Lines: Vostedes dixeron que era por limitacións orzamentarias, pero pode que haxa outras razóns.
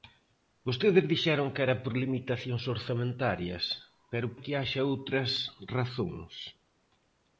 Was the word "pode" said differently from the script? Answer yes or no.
yes